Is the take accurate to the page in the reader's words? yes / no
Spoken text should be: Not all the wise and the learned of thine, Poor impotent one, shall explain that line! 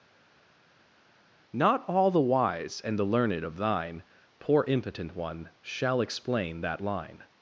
yes